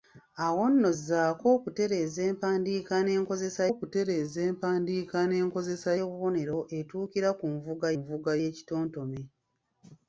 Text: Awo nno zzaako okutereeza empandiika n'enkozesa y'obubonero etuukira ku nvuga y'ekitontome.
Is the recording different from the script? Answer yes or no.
yes